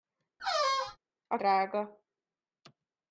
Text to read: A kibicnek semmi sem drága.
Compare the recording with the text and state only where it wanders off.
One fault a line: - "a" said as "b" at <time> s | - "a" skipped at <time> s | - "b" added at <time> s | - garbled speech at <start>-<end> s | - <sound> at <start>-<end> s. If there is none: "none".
- squeak at 0.4-1.0 s
- "kibicnek semmi sem" skipped at 1.4 s